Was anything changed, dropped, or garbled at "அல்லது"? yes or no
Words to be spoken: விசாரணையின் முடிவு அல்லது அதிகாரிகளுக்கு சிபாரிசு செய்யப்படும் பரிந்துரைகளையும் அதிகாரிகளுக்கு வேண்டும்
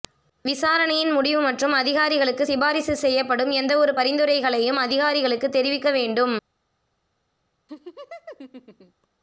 yes